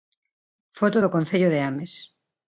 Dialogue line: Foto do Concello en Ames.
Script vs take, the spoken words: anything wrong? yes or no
yes